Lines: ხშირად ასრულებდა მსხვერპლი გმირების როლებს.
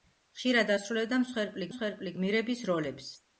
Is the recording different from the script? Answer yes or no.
yes